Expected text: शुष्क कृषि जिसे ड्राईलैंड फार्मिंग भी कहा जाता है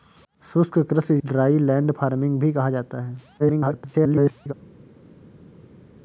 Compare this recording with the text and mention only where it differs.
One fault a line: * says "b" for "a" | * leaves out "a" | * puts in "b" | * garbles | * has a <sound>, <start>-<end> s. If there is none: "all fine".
* leaves out "जिसे"
* garbles